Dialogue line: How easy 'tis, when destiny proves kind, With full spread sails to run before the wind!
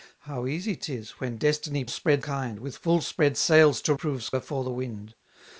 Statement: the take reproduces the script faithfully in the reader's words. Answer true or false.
false